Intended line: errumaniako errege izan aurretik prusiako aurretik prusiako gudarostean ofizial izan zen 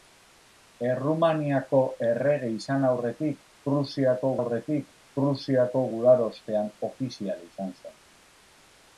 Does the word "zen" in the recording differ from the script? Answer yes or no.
no